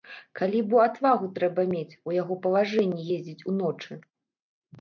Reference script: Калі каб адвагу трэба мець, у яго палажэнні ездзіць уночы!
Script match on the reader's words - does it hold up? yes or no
no